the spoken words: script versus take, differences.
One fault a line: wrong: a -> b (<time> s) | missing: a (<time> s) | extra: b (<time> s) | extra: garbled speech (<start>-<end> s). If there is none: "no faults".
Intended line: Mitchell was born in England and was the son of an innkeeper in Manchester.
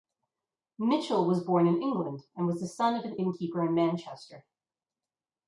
no faults